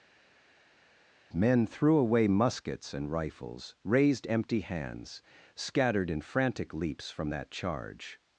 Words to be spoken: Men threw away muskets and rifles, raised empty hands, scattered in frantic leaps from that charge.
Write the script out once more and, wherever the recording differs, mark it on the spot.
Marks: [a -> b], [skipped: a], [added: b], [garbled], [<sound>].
Men threw away muskets and rifles, raised empty hands, scattered in frantic leaps from that charge.